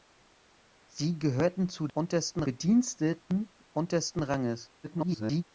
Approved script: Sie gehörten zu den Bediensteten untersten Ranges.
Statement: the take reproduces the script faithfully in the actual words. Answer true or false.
false